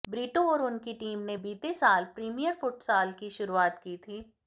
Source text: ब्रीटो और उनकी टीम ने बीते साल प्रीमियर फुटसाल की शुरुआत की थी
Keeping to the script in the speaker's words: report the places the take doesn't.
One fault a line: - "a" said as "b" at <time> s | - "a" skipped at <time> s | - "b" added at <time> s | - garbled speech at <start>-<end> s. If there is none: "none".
none